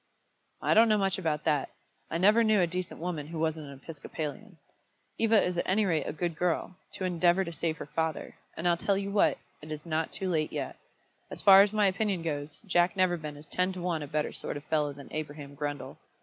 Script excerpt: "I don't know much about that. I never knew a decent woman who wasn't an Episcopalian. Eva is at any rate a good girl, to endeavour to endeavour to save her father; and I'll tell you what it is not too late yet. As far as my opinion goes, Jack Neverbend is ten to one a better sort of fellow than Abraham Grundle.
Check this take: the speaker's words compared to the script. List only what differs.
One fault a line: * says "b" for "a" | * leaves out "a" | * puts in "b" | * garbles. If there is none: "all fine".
* leaves out "endeavour to"